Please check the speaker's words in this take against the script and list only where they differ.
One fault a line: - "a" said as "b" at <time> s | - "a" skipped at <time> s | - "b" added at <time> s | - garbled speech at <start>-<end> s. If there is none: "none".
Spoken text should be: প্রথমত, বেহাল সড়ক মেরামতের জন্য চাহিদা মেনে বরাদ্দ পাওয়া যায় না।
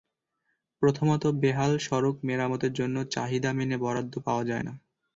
none